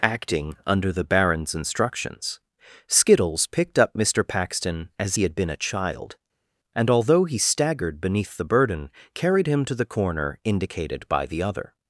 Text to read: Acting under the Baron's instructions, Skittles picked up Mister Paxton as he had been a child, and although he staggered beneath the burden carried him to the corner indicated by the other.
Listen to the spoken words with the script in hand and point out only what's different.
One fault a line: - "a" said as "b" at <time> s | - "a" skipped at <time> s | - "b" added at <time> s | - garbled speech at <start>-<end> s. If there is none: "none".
none